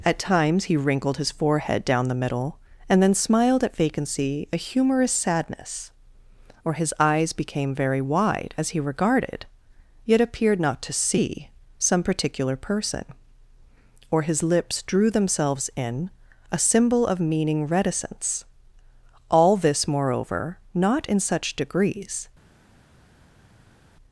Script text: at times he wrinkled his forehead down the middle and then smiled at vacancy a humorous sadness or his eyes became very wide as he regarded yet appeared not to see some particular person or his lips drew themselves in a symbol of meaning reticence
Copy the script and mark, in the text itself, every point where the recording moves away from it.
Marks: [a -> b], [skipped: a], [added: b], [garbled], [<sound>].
at times he wrinkled his forehead down the middle and then smiled at vacancy a humorous sadness or his eyes became very wide as he regarded yet appeared not to see some particular person or his lips drew themselves in a symbol of meaning reticence [added: all this moreover not in such degrees]